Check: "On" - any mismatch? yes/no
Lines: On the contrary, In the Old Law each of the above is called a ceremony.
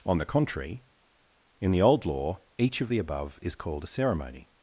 no